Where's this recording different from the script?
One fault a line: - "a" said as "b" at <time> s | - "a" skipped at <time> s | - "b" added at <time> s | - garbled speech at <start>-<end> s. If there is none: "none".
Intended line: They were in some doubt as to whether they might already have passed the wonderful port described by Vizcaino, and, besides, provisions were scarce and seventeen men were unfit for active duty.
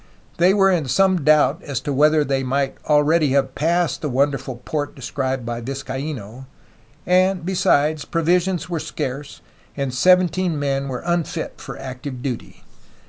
none